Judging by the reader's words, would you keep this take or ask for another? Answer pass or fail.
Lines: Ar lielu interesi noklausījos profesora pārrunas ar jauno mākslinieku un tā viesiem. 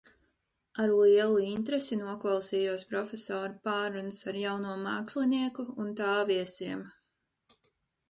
pass